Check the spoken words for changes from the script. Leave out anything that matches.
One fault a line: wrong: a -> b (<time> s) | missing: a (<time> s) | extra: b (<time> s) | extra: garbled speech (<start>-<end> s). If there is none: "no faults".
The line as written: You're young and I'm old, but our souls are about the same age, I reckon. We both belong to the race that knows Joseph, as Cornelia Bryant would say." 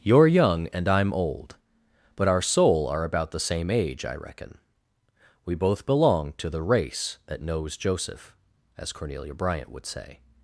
wrong: souls -> soul (2.4 s)